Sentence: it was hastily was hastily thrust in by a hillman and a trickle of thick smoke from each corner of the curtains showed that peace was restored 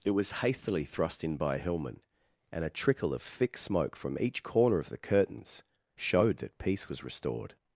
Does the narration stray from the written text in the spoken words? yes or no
yes